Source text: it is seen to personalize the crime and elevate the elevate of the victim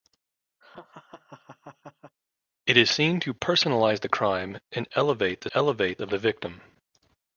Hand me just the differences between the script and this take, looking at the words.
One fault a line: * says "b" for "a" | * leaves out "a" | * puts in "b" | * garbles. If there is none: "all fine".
all fine